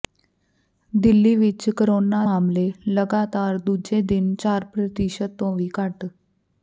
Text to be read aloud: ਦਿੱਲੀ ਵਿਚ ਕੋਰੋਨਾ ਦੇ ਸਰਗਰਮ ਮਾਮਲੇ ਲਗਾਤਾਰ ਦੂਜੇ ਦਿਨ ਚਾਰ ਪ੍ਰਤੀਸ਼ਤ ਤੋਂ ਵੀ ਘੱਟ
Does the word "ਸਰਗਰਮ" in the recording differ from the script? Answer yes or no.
yes